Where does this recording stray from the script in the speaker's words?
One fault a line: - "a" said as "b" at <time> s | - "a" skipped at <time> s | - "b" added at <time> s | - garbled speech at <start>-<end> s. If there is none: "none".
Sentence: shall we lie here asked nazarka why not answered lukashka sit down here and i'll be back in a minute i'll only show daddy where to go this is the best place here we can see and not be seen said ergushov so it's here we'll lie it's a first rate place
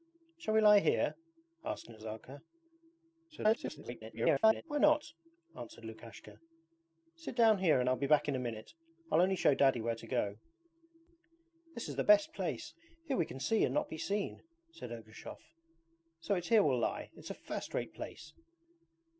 - garbled speech at 3.3-4.6 s